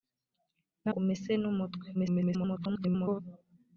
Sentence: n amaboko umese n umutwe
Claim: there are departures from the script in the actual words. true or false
true